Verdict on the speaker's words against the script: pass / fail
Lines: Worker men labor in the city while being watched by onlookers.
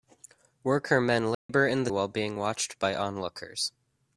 fail